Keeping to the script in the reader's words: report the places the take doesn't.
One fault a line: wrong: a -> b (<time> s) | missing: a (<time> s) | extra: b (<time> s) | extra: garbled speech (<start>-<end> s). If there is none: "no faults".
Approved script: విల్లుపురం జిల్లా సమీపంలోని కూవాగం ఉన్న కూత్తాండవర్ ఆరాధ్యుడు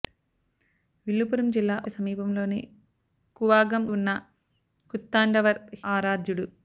no faults